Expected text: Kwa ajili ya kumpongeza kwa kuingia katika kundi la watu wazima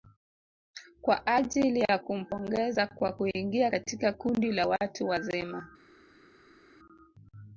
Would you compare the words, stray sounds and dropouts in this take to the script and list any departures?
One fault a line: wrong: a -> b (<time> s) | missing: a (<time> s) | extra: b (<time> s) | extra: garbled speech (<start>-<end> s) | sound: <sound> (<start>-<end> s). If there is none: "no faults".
no faults